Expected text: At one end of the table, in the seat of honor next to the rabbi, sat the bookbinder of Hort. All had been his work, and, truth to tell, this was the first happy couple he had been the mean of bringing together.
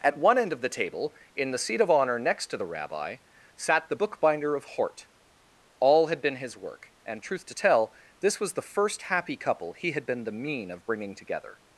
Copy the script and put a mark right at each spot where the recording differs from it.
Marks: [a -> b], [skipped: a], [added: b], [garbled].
At one end of the table, in the seat of honor next to the rabbi, sat the bookbinder of Hort. All had been his work, and, truth to tell, this was the first happy couple he had been the mean of bringing together.